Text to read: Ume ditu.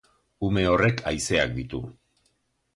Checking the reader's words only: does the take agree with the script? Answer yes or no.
no